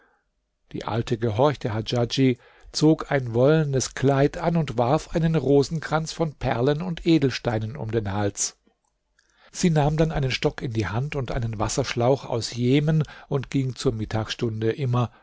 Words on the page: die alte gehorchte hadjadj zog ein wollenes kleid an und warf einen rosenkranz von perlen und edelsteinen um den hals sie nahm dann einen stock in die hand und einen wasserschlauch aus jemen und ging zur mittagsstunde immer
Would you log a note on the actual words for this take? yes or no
no